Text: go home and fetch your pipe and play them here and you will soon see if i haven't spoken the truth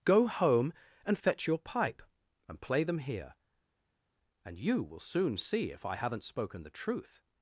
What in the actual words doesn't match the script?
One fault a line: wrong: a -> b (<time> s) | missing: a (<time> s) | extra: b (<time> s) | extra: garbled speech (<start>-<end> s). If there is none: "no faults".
no faults